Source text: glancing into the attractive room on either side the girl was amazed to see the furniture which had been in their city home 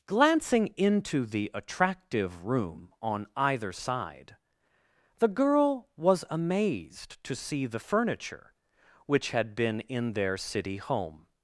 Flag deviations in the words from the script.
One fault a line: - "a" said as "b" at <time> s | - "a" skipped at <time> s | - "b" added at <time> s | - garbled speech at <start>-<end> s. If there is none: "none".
none